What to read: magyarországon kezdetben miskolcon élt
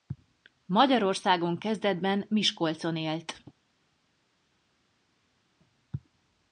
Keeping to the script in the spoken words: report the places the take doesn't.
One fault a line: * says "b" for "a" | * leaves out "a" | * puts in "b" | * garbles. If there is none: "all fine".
all fine